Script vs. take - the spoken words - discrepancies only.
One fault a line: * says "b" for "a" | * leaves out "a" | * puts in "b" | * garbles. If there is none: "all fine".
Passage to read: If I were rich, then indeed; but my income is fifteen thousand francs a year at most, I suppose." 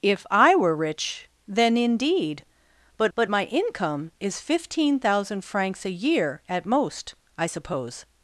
* puts in "but"